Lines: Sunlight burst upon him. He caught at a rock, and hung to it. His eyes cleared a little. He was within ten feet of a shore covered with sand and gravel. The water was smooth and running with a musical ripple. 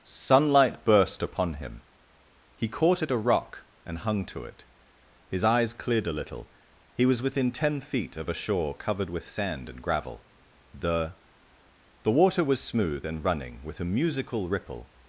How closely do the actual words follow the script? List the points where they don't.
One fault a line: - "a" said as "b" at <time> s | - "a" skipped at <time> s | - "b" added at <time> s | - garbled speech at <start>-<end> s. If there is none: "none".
- "The" added at 12.0 s